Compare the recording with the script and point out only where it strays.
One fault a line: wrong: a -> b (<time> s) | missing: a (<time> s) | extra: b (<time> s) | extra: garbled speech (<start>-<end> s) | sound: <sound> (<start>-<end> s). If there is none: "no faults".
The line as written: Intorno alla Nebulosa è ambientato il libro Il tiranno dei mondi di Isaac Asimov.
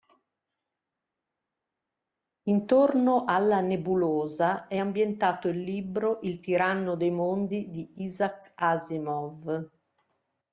no faults